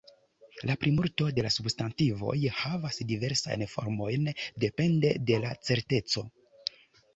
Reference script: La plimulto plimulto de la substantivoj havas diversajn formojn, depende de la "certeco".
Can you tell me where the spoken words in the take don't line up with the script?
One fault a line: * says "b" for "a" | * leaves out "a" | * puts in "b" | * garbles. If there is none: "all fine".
* leaves out "plimulto"